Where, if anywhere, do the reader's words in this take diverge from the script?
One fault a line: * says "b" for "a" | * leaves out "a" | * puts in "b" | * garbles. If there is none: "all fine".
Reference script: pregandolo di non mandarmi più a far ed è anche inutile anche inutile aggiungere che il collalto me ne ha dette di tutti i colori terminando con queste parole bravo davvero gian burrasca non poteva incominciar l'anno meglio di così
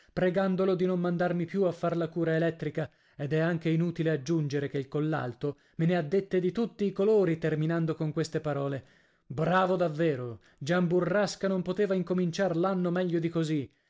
* puts in "la cura elettrica"
* leaves out "anche inutile"